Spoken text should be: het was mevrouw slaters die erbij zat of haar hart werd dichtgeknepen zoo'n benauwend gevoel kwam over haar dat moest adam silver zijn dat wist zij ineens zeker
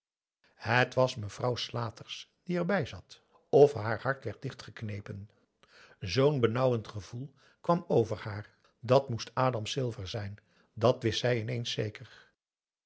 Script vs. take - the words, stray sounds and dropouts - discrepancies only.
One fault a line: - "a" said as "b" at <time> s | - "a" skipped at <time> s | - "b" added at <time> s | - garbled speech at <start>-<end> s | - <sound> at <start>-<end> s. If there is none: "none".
none